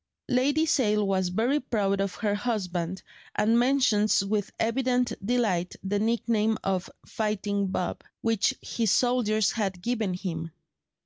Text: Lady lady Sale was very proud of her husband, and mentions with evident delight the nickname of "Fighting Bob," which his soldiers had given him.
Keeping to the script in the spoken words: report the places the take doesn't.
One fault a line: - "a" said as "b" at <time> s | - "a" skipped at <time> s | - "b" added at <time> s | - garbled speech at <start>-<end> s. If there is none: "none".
- "lady" skipped at 0.7 s